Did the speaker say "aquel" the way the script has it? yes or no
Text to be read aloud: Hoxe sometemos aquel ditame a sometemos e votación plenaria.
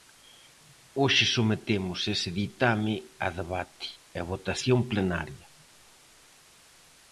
no